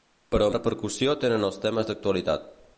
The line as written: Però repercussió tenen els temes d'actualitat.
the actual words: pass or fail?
pass